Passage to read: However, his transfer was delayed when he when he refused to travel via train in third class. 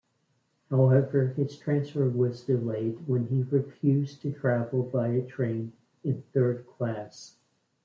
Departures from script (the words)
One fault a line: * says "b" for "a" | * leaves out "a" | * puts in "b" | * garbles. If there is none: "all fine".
* leaves out "when he"